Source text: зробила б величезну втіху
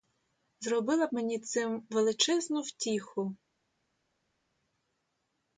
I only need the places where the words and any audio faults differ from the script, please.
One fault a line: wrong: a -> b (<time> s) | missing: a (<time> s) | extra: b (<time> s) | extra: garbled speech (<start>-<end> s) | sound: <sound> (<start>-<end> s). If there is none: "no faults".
extra: мені цим (1.1 s)